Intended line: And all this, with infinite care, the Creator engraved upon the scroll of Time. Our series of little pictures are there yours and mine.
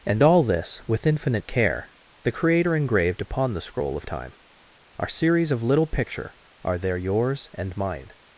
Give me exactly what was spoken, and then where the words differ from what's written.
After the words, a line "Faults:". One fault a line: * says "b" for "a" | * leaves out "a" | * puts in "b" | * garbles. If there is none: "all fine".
And all this, with infinite care, the Creator engraved upon the scroll of Time. Our series of little picture are there yours and mine.
Faults:
* says "picture" for "pictures"